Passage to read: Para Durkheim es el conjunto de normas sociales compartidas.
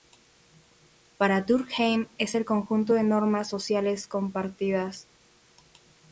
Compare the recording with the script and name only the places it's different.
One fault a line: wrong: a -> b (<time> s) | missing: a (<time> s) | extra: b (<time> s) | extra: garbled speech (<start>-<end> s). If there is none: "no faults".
no faults